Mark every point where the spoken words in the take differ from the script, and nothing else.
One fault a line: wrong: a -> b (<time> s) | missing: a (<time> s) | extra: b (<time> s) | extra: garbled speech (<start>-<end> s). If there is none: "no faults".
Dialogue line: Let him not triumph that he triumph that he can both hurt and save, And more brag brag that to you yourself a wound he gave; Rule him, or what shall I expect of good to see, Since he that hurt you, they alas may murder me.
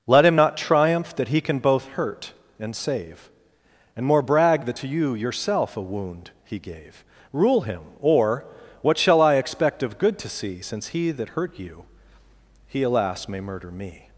missing: triumph that he (1.4 s)
missing: brag (4.6 s)
wrong: they -> he (12.7 s)